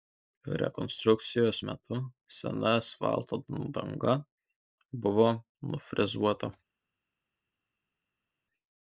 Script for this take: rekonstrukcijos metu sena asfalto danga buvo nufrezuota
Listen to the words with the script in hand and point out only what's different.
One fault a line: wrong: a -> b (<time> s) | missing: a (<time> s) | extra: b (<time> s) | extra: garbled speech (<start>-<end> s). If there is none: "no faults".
no faults